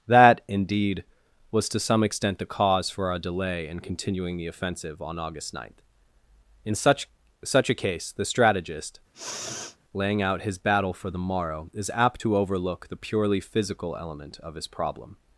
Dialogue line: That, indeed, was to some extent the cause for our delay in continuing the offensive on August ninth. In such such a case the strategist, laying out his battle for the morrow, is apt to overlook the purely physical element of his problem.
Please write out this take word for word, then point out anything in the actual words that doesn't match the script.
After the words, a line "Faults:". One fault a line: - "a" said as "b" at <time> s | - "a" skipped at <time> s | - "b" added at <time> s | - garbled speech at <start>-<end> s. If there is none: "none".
That, indeed, was to some extent the cause for our delay in continuing the offensive on August ninth. In such such a case the strategist, laying out his battle for the morrow, is apt to overlook the purely physical element of his problem.
Faults:
none